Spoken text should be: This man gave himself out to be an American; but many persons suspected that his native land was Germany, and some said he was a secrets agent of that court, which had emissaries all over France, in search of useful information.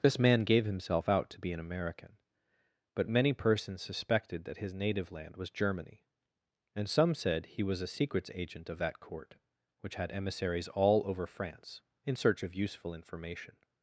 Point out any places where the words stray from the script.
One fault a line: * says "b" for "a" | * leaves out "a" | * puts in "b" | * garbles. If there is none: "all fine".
all fine